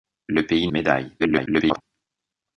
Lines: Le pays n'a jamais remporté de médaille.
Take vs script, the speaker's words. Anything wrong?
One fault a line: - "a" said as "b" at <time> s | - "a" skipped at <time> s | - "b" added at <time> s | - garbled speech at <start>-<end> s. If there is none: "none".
- "n'a jamais remporté" skipped at 0.7 s
- garbled speech at 1.2-1.8 s